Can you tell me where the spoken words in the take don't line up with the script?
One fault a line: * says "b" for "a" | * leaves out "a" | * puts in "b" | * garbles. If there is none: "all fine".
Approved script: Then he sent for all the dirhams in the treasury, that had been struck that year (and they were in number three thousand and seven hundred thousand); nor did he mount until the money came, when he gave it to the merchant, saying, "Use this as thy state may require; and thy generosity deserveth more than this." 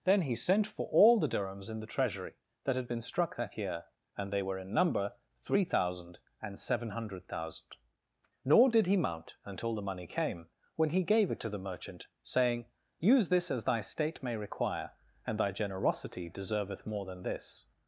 all fine